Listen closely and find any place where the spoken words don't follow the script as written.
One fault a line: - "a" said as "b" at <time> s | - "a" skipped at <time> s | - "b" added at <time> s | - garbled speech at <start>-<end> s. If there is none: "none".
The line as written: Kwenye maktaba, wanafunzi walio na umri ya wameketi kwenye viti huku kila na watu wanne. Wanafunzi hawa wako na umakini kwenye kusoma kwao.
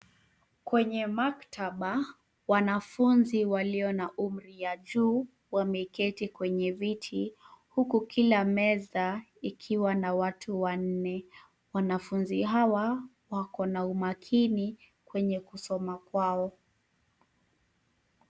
- "juu" added at 4.8 s
- "meza ikiwa" added at 8.4 s